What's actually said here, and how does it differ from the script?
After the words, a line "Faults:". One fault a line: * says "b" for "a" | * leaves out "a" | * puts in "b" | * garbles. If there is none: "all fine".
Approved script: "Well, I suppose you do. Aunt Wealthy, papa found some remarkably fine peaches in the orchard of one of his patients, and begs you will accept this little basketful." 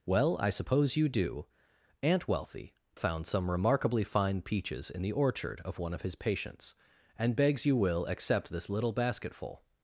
"Well, I suppose you do. Aunt Wealthy, found some remarkably fine peaches in the orchard of one of his patients, and begs you will accept this little basketful."
Faults:
* leaves out "papa"